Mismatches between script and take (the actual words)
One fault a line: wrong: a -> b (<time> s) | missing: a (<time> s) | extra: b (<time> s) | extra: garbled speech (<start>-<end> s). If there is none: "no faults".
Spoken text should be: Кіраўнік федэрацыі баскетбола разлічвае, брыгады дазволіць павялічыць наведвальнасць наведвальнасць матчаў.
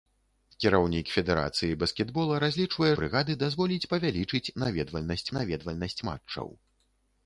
no faults